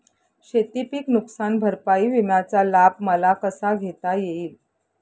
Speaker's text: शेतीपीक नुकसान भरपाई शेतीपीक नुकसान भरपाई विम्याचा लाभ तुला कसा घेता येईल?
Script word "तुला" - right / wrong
wrong